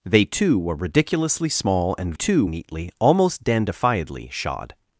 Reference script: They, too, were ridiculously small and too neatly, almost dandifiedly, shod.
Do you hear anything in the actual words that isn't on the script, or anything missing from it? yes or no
no